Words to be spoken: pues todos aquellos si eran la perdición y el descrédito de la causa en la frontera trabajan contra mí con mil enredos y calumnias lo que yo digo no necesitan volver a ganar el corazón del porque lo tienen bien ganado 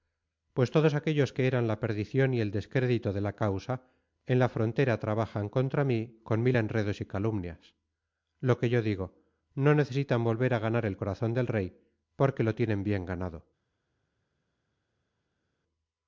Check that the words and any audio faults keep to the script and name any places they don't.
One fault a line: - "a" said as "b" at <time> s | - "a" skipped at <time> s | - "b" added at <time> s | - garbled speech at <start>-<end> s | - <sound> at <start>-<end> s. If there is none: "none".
- "si" said as "que" at 1.3 s
- "rey" added at 11.5 s